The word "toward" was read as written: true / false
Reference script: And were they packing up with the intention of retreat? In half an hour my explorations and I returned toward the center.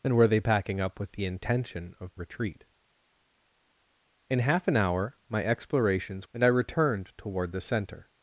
true